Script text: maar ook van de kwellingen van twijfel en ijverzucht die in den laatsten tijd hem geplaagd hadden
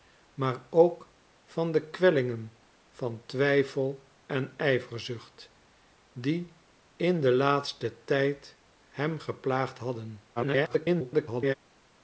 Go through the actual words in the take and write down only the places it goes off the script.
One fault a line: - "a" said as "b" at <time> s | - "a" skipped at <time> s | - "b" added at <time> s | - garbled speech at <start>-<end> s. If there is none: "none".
- garbled speech at 10.4-11.5 s